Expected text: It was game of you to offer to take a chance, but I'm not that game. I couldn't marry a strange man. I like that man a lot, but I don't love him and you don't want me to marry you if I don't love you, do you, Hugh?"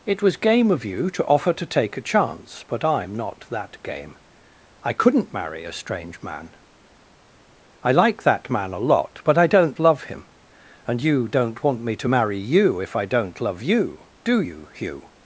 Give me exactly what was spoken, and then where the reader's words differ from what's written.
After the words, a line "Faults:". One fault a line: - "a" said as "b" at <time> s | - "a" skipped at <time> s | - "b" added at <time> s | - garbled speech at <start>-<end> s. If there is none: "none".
It was game of you to offer to take a chance, but I'm not that game. I couldn't marry a strange man. I like that man a lot, but I don't love him and you don't want me to marry you if I don't love you, do you, Hugh?"
Faults:
none